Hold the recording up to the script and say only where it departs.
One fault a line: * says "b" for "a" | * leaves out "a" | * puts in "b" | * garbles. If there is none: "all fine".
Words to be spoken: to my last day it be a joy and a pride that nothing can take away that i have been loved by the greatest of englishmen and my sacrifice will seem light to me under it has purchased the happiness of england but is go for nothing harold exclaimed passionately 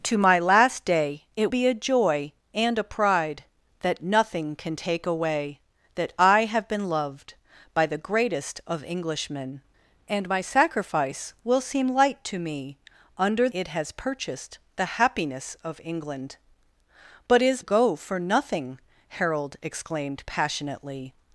all fine